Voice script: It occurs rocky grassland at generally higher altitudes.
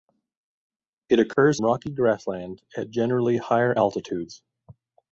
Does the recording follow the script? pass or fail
pass